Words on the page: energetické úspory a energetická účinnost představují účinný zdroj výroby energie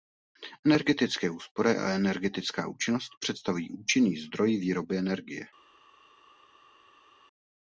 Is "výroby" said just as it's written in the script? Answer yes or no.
yes